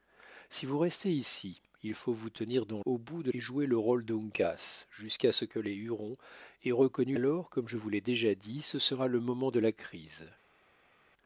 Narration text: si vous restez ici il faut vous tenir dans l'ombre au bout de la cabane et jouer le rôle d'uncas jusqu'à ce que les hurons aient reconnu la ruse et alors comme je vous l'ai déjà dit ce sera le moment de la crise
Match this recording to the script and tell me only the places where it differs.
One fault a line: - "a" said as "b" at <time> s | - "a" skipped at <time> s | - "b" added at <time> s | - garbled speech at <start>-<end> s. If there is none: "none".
- "l'ombre" skipped at 2.8 s
- "la cabane" skipped at 3.3 s
- "la ruse et" skipped at 7.2 s